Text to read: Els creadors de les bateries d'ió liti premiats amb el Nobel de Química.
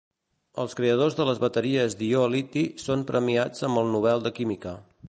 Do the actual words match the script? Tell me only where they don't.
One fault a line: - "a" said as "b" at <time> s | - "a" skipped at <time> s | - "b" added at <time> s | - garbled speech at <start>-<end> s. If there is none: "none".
- "són" added at 2.8 s